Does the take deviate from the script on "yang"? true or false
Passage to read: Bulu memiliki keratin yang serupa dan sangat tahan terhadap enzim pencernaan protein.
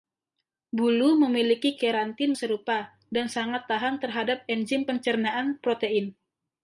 true